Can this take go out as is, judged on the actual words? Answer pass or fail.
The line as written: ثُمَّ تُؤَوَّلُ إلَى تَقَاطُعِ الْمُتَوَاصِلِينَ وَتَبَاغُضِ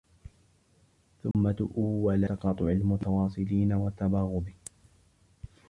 fail